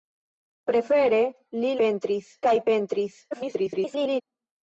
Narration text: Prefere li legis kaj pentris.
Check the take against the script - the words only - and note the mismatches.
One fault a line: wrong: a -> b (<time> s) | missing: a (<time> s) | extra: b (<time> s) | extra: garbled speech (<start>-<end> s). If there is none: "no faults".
wrong: legis -> pentris (1.8 s)
extra: garbled speech (3.3-4.2 s)